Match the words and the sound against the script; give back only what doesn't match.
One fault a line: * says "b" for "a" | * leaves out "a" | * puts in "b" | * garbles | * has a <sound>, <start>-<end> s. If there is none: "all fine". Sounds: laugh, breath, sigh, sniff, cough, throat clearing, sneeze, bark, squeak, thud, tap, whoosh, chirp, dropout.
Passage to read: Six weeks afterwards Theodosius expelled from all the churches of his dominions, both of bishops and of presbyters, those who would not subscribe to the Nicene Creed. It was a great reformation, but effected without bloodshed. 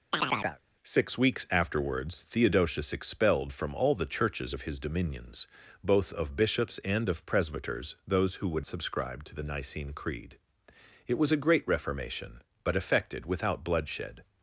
* has a chirp, 0.1-0.6 s
* leaves out "not"